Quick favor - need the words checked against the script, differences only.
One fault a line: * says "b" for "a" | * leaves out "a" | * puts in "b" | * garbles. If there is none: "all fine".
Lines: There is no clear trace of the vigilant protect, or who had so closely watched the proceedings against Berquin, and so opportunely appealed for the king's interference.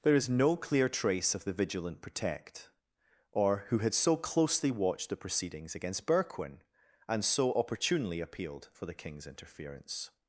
all fine